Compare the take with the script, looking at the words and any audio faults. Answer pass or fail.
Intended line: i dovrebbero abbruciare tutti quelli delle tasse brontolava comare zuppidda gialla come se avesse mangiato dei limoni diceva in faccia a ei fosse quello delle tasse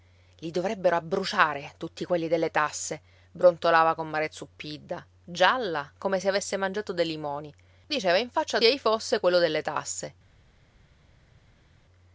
pass